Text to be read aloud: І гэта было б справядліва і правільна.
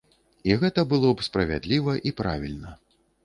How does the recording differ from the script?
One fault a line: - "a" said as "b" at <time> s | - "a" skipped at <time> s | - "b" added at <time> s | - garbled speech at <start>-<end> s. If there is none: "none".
none